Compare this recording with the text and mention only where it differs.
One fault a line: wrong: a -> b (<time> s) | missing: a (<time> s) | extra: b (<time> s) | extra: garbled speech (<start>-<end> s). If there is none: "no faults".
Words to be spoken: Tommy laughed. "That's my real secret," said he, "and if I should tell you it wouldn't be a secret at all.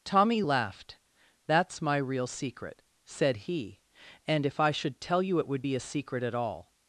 wrong: wouldn't -> would (5.5 s)